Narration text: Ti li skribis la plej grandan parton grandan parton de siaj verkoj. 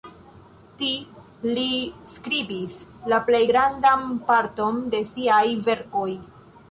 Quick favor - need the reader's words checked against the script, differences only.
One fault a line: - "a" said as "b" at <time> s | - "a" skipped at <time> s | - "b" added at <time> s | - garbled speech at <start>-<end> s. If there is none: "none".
- "grandan parton" skipped at 4.8 s